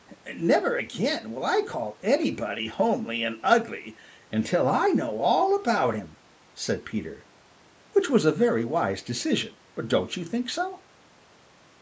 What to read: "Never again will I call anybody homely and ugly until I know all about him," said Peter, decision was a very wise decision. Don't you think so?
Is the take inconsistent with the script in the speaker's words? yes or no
yes